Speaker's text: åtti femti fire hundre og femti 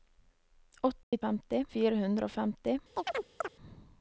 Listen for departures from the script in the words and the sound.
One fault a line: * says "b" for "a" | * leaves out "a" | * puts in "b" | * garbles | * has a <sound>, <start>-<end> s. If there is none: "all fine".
* has a dropout, 1.0-1.1 s
* has a chirp, 2.9-3.5 s